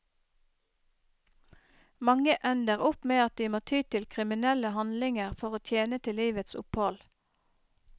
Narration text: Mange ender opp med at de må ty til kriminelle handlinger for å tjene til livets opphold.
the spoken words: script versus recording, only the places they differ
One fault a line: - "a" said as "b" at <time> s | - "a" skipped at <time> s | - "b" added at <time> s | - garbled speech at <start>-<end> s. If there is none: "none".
none